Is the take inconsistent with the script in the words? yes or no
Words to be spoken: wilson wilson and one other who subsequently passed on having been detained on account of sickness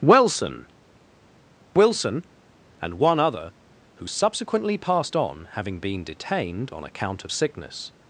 no